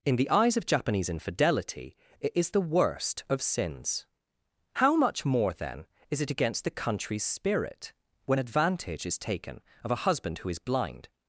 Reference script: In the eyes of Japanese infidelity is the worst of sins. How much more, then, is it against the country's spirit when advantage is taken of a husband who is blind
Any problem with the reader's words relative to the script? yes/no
yes